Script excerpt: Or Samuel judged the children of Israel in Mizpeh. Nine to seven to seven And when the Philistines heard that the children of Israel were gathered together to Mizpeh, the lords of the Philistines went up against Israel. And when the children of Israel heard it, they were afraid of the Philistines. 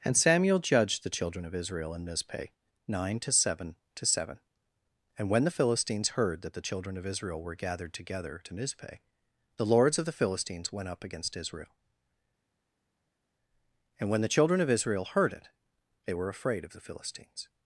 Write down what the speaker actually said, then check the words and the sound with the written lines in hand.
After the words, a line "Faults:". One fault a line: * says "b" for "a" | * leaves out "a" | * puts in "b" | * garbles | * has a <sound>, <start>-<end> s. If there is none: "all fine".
And Samuel judged the children of Israel in Mizpeh. Nine to seven to seven And when the Philistines heard that the children of Israel were gathered together to Mizpeh, the lords of the Philistines went up against Israel. And when the children of Israel heard it, they were afraid of the Philistines.
Faults:
* says "And" for "Or"